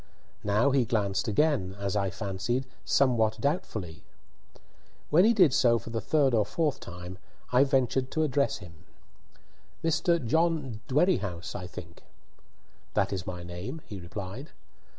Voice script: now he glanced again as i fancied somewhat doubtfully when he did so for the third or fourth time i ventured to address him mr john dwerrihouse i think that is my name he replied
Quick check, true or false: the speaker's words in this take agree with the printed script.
true